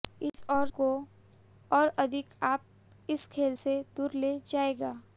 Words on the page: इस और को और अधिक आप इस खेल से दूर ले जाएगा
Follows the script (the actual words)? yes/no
yes